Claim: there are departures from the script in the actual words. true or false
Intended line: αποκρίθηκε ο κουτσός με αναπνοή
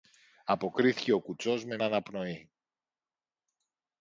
false